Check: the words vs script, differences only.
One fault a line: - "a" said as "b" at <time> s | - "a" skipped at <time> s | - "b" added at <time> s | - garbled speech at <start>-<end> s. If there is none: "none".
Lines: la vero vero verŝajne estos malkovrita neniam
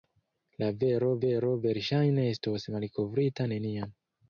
none